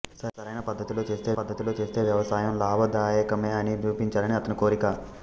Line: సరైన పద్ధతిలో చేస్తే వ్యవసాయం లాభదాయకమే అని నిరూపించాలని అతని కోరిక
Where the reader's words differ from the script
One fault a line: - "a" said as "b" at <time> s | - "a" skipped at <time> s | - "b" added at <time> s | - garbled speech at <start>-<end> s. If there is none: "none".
- "పద్ధతిలో చేస్తే" added at 1.3 s